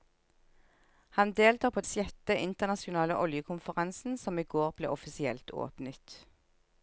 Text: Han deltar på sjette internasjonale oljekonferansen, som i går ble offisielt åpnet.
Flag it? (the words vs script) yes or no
no